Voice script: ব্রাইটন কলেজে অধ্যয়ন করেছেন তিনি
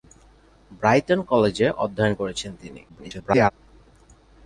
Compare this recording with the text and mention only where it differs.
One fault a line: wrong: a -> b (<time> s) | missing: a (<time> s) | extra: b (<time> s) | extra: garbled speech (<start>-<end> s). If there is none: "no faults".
extra: garbled speech (2.9-3.5 s)